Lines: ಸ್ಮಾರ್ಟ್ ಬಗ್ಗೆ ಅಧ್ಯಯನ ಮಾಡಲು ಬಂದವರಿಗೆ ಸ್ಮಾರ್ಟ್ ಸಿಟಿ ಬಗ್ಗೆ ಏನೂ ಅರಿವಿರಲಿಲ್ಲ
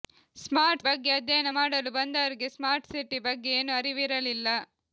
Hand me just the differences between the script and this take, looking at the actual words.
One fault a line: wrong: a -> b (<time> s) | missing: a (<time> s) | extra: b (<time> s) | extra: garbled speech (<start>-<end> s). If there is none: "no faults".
no faults